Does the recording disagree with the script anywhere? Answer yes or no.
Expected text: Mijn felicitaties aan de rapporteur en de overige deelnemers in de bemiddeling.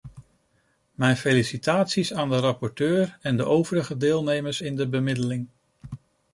no